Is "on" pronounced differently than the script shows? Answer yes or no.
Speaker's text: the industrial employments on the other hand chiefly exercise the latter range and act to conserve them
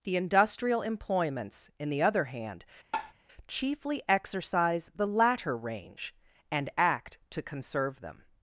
yes